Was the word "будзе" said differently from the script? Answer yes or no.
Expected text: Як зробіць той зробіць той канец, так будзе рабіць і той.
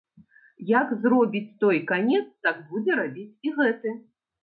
no